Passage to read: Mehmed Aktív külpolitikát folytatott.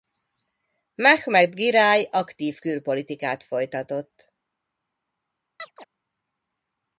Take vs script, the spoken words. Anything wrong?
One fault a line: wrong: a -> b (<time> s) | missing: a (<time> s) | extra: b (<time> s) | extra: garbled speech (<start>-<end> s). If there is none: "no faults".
extra: Giráj (1.5 s)